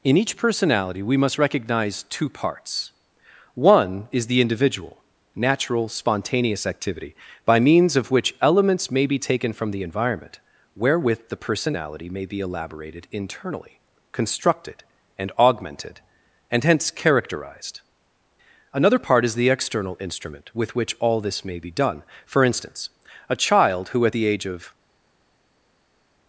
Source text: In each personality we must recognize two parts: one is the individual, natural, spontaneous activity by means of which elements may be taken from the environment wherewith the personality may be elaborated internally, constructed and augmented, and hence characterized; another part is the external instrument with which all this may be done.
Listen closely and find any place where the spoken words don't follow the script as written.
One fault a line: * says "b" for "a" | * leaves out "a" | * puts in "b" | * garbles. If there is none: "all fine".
* puts in "For instance a child who at the age of"